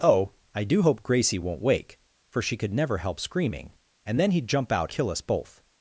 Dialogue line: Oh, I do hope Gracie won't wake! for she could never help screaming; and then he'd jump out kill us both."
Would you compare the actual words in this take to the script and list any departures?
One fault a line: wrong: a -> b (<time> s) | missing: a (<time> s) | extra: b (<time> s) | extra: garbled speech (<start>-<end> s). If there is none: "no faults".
no faults